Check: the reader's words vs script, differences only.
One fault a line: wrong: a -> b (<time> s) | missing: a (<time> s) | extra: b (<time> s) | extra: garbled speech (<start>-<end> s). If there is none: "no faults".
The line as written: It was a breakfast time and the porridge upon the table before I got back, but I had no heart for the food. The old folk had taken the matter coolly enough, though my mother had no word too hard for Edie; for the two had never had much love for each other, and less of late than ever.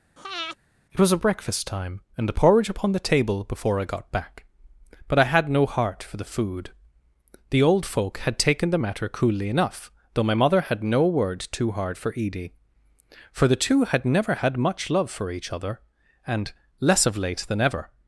no faults